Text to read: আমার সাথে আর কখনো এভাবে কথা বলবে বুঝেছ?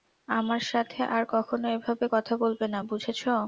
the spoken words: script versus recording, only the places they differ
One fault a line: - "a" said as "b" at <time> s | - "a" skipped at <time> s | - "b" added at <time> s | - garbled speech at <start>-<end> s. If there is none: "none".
- "না" added at 2.7 s